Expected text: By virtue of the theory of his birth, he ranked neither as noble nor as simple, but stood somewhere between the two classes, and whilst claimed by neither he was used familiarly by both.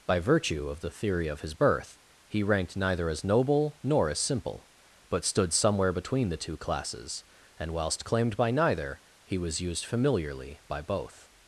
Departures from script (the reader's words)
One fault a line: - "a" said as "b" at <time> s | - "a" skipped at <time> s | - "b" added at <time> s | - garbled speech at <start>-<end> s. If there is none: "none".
none